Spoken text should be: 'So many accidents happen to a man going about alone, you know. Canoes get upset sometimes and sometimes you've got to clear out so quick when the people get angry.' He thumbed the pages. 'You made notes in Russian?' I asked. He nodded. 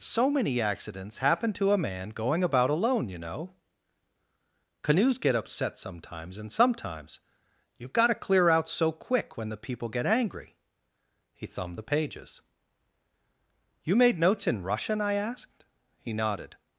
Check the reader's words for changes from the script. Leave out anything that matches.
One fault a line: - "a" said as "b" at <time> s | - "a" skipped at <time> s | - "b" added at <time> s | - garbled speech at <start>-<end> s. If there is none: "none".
none